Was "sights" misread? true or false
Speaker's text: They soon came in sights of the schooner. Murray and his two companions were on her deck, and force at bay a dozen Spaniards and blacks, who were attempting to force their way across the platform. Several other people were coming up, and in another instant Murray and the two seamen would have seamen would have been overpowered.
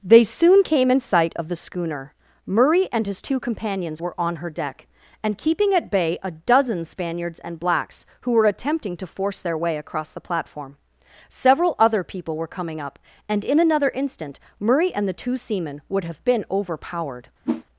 true